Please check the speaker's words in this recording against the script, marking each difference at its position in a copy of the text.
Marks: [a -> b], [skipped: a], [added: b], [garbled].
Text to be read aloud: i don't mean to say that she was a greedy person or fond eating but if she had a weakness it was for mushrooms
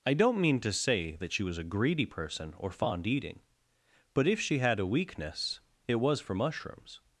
i don't mean to say that she was a greedy person or fond eating but if she had a weakness it was for mushrooms